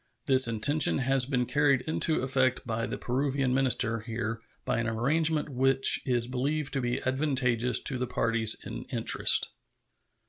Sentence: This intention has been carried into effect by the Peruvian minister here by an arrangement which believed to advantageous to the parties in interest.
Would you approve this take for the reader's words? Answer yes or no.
no